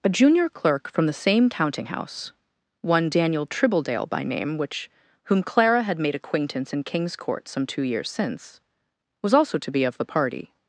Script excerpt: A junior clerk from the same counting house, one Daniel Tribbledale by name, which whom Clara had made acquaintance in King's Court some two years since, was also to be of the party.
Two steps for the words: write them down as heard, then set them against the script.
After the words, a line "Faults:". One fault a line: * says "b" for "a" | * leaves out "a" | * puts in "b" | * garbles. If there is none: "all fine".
A junior clerk from the same counting house, one Daniel Tribbledale by name, which whom Clara had made acquaintance in King's Court some two years since, was also to be of the party.
Faults:
all fine